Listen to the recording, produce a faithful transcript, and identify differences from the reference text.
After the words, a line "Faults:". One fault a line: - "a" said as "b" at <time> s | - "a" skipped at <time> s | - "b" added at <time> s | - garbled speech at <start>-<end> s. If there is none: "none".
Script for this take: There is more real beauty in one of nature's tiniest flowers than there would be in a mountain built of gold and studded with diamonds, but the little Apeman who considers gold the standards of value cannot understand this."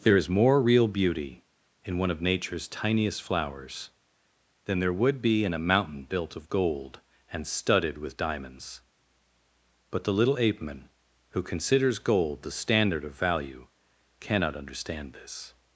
There is more real beauty in one of nature's tiniest flowers than there would be in a mountain built of gold and studded with diamonds, but the little Apeman who considers gold the standard of value cannot understand this."
Faults:
- "standards" said as "standard" at 12.5 s